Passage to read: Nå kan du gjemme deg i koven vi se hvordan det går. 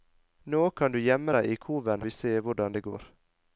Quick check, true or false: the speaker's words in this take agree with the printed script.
true